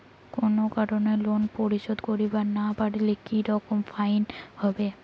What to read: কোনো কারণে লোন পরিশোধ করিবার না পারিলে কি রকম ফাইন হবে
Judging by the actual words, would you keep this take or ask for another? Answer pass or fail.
pass